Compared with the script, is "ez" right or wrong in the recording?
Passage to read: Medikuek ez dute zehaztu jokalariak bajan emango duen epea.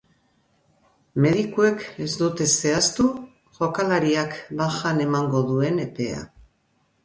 right